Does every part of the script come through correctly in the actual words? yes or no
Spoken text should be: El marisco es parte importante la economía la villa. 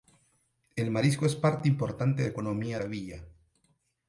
yes